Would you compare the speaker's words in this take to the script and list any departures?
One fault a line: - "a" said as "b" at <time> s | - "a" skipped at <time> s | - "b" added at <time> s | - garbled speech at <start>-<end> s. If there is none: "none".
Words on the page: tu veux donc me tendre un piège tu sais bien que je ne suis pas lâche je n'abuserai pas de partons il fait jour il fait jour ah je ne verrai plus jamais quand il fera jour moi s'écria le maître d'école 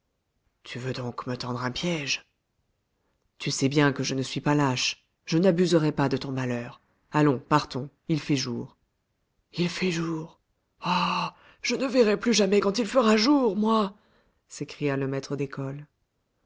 - "ton malheur allons" added at 6.2 s